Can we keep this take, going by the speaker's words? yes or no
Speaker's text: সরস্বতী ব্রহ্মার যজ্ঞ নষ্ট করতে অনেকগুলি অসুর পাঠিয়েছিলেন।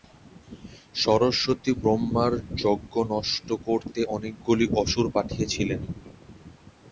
yes